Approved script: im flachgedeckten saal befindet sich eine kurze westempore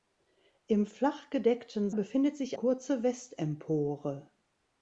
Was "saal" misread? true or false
true